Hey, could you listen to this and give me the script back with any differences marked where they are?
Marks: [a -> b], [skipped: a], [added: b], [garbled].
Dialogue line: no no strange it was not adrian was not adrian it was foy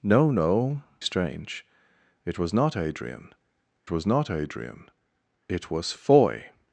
no no strange it was not adrian was not adrian it was foy